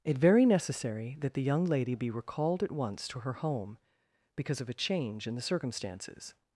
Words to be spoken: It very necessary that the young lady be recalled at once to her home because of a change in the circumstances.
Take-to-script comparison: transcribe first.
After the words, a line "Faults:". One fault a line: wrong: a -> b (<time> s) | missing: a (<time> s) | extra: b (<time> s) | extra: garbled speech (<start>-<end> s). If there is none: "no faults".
It very necessary that the young lady be recalled at once to her home because of a change in the circumstances.
Faults:
no faults